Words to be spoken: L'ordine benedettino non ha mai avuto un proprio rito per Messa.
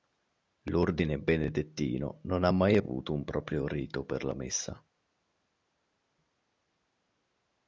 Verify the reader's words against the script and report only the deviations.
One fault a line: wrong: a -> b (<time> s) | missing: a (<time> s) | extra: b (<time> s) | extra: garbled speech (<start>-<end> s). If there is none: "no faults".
extra: la (4.2 s)